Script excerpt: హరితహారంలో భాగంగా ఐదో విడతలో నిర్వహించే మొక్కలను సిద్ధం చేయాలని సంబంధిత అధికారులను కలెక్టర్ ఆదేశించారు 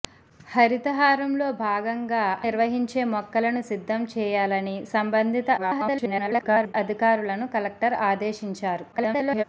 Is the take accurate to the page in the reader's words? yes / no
no